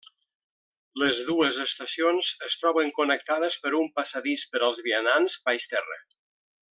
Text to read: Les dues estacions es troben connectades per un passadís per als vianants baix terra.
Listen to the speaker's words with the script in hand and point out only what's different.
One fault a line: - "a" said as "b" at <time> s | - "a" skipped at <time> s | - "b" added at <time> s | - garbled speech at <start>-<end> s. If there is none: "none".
none